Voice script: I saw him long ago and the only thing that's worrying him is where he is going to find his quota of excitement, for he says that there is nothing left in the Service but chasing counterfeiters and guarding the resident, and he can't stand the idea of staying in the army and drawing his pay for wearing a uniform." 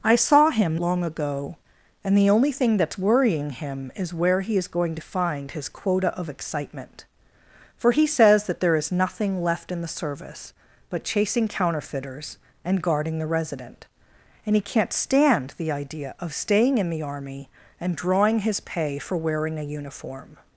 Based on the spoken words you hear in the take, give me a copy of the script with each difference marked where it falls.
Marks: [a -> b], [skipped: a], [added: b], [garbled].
I saw him long ago and the only thing that's worrying him is where he is going to find his quota of excitement, for he says that there is nothing left in the Service but chasing counterfeiters and guarding the resident, and he can't stand the idea of staying in the army and drawing his pay for wearing a uniform."